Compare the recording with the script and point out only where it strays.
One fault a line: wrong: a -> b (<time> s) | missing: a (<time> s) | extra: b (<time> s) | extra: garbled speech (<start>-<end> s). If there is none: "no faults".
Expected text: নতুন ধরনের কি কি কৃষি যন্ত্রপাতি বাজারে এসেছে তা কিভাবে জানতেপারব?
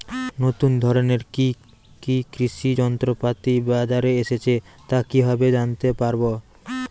no faults